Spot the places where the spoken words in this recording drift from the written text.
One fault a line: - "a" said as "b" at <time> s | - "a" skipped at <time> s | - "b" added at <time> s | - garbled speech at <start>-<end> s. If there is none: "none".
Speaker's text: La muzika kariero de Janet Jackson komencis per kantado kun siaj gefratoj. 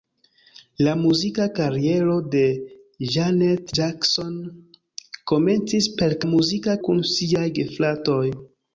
- "kantado" said as "muzika" at 6.3 s